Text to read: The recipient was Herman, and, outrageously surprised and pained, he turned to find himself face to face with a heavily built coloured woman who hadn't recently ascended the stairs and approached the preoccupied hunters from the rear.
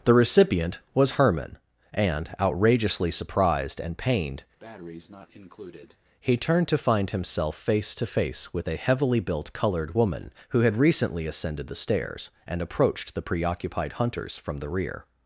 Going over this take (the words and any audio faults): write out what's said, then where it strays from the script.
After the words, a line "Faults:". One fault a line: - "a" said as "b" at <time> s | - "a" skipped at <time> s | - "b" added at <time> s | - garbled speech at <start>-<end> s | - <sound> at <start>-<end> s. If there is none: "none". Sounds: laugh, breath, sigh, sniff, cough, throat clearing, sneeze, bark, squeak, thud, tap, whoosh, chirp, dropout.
The recipient was Herman, and, outrageously surprised and pained, he turned to find himself face to face with a heavily built coloured woman who had recently ascended the stairs and approached the preoccupied hunters from the rear.
Faults:
- breath at 4.6-6.0 s
- "hadn't" said as "had" at 10.6 s